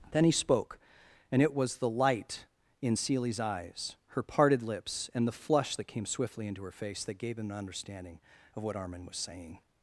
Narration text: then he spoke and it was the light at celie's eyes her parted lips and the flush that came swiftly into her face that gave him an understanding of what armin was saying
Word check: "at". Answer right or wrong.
wrong